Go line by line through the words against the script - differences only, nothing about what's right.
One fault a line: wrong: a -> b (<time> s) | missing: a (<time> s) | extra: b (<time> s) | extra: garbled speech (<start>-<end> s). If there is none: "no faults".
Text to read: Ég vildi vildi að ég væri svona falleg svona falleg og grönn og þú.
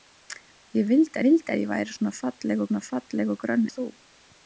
no faults